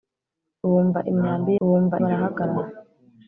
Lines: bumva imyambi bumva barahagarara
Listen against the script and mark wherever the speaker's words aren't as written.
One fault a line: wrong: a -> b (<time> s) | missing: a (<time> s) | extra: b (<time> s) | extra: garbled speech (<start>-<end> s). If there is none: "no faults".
no faults